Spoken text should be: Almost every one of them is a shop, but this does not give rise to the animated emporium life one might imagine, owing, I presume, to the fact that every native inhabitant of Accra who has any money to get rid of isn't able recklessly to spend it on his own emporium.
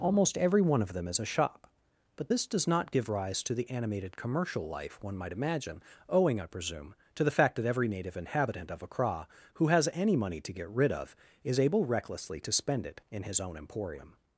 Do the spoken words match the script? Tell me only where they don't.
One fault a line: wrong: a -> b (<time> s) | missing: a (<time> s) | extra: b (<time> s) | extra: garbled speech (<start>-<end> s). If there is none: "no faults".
wrong: emporium -> commercial (4.1 s)
wrong: isn't -> is (11.4 s)
wrong: on -> in (13.1 s)